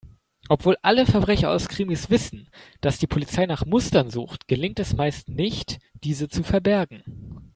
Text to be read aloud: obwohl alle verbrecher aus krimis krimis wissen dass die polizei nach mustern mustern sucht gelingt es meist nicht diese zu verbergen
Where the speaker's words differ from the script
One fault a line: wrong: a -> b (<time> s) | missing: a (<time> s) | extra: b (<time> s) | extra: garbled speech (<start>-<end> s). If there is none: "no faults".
missing: krimis (2.1 s)
missing: mustern (4.1 s)